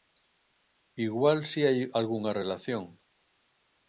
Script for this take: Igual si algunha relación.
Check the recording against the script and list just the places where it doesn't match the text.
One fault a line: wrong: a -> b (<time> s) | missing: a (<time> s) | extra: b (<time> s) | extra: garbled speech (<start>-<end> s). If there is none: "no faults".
extra: hai (1.7 s)